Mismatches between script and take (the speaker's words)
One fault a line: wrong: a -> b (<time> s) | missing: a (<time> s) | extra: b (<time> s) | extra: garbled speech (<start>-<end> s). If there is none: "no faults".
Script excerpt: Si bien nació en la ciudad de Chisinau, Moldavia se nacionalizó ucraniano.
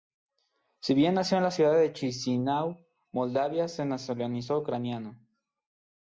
no faults